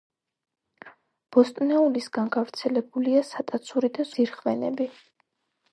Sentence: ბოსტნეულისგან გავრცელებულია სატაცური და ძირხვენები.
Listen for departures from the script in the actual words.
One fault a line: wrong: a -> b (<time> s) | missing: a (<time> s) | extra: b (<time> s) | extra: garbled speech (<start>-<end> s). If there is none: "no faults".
no faults